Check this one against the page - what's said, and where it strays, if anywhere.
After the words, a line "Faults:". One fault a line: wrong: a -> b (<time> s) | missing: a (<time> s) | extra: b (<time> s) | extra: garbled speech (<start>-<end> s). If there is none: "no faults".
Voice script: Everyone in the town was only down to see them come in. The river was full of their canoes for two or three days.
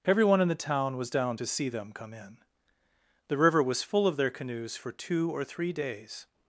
Everyone in the town was down to see them come in. The river was full of their canoes for two or three days.
Faults:
missing: only (1.1 s)